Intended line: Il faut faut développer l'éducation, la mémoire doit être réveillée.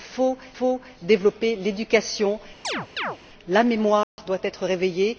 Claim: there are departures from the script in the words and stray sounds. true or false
true